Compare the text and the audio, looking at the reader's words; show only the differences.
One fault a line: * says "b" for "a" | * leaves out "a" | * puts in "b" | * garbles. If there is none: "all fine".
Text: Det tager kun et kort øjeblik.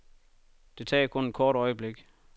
all fine